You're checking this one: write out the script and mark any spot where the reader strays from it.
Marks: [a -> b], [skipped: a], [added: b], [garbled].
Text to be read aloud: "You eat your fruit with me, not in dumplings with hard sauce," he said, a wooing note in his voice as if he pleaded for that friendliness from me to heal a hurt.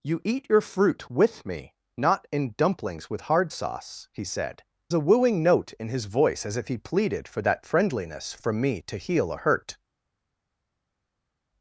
"You eat your fruit with me, not in dumplings with hard sauce," he said, a wooing note in his voice as if he pleaded for that friendliness from me to heal a hurt.